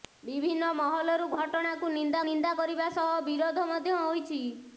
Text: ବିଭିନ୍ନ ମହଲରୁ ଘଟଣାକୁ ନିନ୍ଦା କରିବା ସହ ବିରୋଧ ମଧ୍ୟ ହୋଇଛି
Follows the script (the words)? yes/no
no